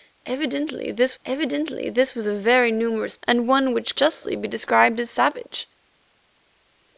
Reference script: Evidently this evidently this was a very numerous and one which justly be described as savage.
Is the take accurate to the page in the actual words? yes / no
yes